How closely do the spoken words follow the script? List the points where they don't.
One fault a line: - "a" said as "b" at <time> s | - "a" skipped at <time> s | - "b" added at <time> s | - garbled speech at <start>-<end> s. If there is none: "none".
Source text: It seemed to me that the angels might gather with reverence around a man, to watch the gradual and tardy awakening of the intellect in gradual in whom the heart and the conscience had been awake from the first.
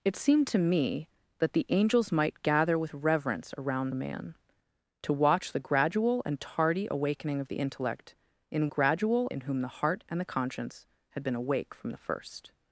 none